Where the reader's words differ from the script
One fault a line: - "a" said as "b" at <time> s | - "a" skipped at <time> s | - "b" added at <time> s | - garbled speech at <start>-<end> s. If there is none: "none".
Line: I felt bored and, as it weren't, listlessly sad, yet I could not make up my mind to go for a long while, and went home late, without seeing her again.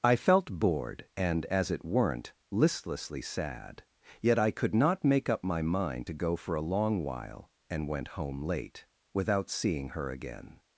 none